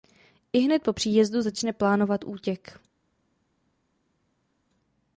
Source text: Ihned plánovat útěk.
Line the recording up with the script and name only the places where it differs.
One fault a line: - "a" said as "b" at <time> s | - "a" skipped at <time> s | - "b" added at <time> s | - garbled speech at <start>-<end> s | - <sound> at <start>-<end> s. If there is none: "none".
- "po příjezdu začne" added at 0.8 s